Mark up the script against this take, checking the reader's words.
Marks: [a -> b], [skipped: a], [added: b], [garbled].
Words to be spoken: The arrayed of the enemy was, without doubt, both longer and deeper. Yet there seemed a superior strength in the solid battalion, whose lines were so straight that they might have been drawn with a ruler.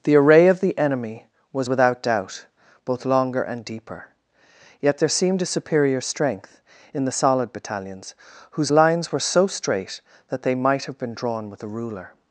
The [arrayed -> array] of the enemy was, without doubt, both longer and deeper. Yet there seemed a superior strength in the solid [battalion, -> battalions] whose lines were so straight that they might have been drawn with a ruler.